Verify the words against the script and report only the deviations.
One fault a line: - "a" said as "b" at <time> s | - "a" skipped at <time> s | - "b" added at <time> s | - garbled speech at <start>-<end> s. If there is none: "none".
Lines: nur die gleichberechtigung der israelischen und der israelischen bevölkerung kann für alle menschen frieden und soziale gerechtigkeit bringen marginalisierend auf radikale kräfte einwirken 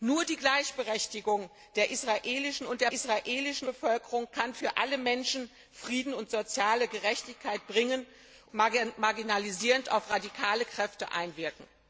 none